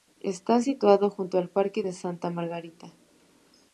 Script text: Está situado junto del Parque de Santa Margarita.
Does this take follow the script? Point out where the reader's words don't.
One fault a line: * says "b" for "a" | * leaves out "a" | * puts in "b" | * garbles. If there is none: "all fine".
* says "al" for "del"